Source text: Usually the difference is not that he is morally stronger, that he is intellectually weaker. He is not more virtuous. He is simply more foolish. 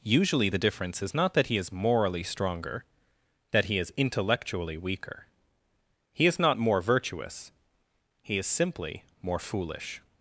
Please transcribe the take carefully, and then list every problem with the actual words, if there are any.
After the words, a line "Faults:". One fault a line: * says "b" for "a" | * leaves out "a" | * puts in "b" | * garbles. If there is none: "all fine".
Usually the difference is not that he is morally stronger, that he is intellectually weaker. He is not more virtuous. He is simply more foolish.
Faults:
all fine